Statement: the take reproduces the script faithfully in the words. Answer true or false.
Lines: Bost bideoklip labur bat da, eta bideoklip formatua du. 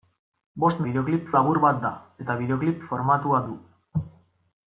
true